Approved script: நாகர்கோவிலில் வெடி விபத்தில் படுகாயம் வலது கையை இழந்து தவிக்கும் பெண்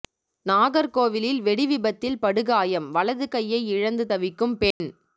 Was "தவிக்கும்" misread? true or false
false